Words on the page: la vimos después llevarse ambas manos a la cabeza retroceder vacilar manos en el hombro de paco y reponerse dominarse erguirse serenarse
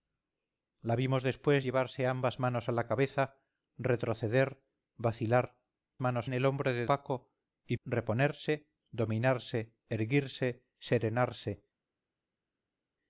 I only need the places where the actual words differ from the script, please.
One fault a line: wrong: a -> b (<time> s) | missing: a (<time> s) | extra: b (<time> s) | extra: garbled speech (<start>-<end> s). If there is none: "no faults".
no faults